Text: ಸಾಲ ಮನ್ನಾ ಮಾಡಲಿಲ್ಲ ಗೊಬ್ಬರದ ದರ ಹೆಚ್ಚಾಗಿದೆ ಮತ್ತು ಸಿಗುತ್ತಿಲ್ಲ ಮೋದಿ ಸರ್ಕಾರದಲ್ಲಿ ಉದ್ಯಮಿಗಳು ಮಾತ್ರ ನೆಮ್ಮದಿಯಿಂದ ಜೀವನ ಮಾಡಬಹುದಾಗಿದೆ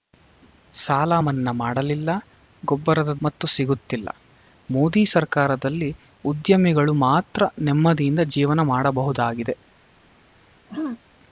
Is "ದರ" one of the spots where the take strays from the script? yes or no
yes